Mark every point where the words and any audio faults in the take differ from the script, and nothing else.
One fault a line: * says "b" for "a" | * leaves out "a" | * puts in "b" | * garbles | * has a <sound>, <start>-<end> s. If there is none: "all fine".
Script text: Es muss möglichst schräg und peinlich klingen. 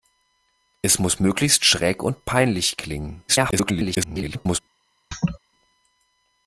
* garbles
* has a laugh, 5.1-5.4 s